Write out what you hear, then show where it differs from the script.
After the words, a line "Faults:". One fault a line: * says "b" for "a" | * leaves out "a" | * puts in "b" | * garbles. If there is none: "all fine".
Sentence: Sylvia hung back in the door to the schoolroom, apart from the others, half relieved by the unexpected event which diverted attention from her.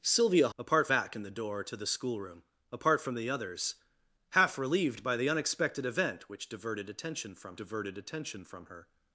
Sylvia apart back in the door to the schoolroom, apart from the others, half relieved by the unexpected event which diverted attention from diverted attention from her.
Faults:
* says "apart" for "hung"
* puts in "diverted attention from"